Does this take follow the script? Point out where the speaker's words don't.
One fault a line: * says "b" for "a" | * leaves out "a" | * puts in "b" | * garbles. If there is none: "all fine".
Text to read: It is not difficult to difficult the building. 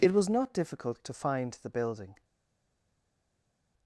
* says "was" for "is"
* says "find" for "difficult"